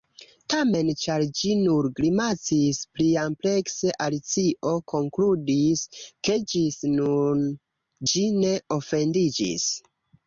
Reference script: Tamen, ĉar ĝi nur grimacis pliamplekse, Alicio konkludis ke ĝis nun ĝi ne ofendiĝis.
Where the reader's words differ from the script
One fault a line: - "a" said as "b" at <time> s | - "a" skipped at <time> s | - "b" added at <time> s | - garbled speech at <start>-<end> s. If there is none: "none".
none